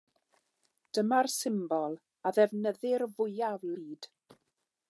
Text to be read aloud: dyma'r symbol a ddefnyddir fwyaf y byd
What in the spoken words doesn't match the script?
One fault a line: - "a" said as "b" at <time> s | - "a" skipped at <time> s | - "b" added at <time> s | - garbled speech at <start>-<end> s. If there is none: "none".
none